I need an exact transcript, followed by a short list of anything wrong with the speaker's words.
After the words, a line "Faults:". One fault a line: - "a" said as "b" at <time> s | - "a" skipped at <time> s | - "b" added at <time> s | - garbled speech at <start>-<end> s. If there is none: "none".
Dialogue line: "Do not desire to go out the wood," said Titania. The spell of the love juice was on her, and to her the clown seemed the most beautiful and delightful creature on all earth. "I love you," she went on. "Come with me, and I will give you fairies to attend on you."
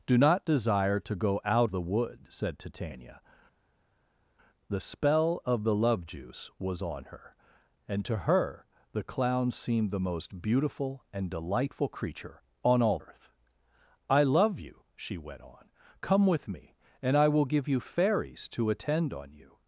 "Do not desire to go out the wood," said Titania. The spell of the love juice was on her, and to her the clown seemed the most beautiful and delightful creature on all earth. "I love you," she went on. "Come with me, and I will give you fairies to attend on you."
Faults:
none